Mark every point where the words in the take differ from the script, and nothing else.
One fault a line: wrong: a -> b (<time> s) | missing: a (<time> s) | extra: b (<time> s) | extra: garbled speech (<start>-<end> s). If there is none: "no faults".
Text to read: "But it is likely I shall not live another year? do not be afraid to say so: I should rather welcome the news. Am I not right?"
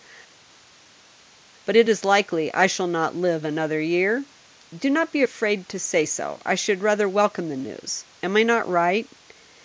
no faults